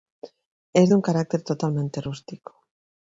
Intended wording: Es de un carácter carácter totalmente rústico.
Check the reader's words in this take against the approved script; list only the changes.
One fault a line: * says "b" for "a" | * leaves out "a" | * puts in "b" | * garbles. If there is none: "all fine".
* leaves out "carácter"